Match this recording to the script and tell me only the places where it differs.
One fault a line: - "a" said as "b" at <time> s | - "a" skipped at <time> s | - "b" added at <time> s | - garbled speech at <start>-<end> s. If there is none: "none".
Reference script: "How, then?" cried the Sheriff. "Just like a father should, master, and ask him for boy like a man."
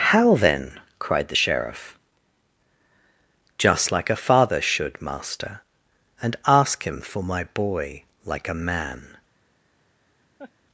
- "my" added at 7.2 s